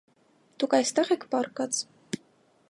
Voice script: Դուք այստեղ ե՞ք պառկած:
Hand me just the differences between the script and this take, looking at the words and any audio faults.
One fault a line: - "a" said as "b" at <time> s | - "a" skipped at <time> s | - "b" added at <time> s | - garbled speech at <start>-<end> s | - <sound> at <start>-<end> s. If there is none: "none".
none